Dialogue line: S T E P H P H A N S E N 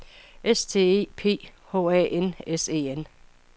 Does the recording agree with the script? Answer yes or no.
no